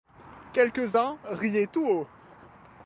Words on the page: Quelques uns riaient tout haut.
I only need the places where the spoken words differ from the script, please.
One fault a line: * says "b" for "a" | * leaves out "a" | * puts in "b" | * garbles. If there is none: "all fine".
all fine